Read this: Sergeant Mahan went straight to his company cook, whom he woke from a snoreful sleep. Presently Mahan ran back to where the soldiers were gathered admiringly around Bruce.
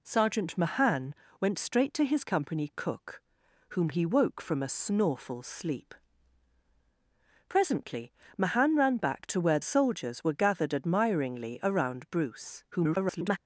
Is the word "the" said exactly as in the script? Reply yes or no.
no